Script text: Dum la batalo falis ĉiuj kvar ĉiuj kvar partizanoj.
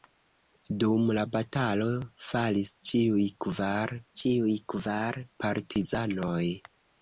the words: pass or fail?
pass